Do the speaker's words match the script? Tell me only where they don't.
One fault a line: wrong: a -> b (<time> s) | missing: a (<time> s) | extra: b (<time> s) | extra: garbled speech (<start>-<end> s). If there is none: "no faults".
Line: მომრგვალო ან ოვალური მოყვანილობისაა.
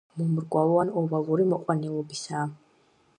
no faults